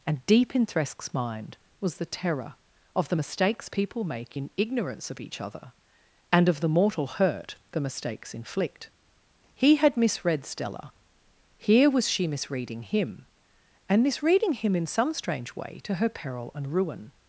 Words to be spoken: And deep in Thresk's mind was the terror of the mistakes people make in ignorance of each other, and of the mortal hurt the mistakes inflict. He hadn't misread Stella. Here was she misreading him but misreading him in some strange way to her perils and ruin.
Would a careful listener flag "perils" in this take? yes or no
yes